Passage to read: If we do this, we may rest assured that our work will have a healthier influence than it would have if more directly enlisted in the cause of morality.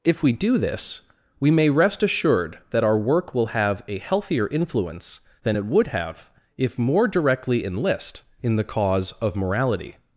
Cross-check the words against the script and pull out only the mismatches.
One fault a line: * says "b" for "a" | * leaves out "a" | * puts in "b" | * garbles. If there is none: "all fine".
* says "enlist" for "enlisted"